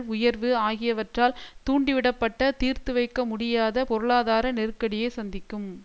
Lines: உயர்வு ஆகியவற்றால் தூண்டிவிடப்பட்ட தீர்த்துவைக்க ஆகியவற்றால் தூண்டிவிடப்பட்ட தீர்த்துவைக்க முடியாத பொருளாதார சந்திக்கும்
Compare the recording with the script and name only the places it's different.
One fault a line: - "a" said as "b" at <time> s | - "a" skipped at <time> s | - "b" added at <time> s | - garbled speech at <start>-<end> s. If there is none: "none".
- "ஆகியவற்றால் தூண்டிவிடப்பட்ட தீர்த்துவைக்க" skipped at 3.2 s
- "நெருக்கடியை" added at 4.5 s